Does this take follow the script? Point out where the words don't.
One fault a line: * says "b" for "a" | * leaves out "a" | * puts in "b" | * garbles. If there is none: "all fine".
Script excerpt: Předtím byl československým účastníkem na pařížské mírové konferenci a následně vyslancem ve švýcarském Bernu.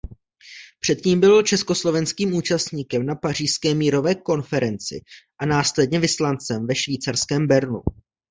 all fine